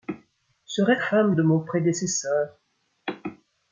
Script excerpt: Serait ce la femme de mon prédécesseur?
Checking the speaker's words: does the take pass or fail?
fail